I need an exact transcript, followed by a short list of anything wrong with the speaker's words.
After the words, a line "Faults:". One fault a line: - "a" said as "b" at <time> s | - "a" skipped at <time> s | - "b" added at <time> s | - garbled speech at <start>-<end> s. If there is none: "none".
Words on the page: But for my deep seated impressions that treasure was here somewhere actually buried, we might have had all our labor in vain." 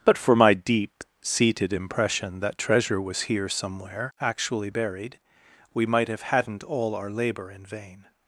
But for my deep seated impression that treasure was here somewhere actually buried, we might have hadn't all our labor in vain."
Faults:
- "impressions" said as "impression" at 1.7 s
- "had" said as "hadn't" at 6.2 s